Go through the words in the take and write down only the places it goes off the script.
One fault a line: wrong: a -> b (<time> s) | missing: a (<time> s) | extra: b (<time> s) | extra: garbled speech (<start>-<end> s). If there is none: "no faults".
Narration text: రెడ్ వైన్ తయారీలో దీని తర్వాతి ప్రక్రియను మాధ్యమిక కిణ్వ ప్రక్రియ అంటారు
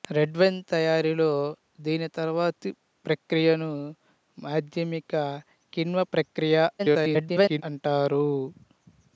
extra: garbled speech (6.8-7.6 s)